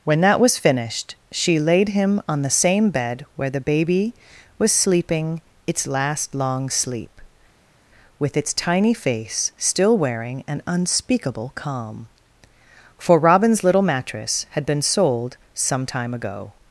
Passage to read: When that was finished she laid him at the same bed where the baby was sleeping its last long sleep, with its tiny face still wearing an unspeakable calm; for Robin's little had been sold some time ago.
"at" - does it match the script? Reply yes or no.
no